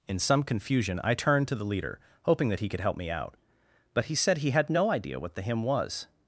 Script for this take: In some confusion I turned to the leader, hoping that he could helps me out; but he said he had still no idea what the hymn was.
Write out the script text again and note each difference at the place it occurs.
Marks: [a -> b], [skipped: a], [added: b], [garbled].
In some confusion I turned to the leader, hoping that he could [helps -> help] me out; but he said he had [skipped: still] no idea what the hymn was.